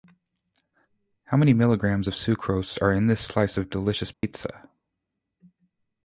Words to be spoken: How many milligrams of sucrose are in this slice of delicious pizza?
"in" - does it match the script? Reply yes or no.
yes